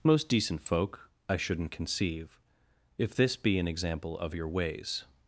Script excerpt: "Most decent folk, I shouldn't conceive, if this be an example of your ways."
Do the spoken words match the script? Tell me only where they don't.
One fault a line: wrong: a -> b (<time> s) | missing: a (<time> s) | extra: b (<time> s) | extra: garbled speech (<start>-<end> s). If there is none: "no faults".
no faults